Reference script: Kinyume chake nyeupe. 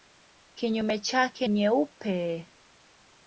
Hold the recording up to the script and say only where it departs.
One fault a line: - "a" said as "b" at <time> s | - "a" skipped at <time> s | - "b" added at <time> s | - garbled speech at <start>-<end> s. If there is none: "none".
none